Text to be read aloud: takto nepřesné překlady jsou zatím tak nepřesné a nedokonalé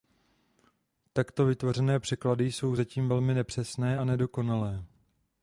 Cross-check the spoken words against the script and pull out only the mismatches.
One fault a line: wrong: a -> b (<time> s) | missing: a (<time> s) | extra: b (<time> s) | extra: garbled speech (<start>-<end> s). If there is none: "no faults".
wrong: nepřesné -> vytvořené (1.4 s)
wrong: tak -> velmi (3.1 s)